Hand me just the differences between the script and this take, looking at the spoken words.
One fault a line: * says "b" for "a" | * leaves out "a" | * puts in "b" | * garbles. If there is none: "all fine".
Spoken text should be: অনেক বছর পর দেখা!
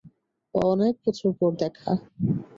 all fine